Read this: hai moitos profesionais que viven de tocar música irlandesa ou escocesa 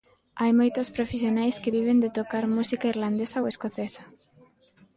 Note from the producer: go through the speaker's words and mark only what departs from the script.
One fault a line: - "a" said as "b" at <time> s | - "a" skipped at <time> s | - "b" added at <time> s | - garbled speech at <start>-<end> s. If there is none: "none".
none